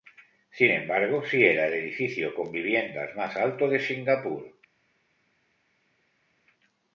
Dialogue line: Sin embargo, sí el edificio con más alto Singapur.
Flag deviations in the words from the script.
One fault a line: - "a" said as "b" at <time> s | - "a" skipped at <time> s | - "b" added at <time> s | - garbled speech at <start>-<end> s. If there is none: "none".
- "era" added at 1.4 s
- "viviendas" added at 2.5 s
- "de" added at 3.7 s